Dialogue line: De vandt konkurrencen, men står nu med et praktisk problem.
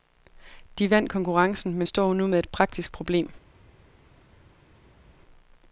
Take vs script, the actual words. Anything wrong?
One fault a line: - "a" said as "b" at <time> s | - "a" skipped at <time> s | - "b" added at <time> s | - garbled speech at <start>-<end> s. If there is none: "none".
none